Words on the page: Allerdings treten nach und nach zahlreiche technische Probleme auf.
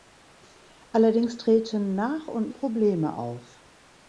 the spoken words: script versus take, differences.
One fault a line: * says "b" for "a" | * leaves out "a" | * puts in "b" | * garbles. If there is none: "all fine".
* leaves out "nach zahlreiche technische"